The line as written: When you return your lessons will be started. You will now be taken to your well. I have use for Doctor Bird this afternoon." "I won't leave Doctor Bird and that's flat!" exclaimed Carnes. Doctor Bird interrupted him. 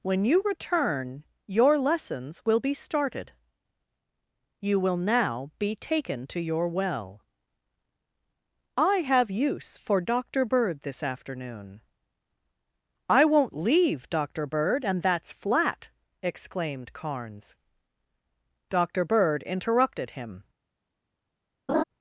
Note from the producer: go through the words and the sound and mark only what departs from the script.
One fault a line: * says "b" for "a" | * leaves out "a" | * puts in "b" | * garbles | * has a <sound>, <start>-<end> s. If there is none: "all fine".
* has a laugh, 21.7-21.8 s